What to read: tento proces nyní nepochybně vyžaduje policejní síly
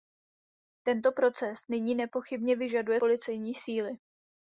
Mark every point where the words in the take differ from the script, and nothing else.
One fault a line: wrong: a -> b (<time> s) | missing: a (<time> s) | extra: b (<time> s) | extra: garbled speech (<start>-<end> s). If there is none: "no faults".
no faults